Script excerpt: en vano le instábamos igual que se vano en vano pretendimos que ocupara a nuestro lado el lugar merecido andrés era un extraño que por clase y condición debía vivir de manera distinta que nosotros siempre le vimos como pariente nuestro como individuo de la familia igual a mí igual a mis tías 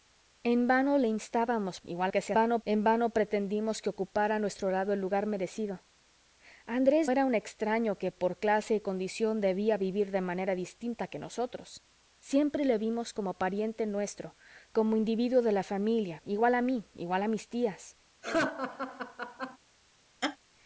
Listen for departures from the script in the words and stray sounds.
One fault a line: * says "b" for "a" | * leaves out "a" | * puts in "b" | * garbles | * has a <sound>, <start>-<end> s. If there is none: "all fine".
* has a laugh, 18.2-19.6 s
* has a laugh, 20.2-20.4 s